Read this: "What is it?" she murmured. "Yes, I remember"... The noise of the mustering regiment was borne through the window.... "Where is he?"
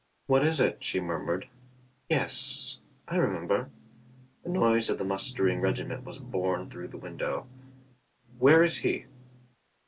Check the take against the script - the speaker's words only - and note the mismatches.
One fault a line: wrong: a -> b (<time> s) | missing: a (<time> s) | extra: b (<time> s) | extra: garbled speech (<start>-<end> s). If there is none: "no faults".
no faults